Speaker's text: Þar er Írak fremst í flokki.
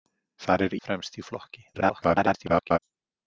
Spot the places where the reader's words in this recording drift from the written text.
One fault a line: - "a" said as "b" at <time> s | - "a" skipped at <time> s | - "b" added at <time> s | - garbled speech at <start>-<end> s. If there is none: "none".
- "Írak" skipped at 0.8 s
- garbled speech at 1.7-2.8 s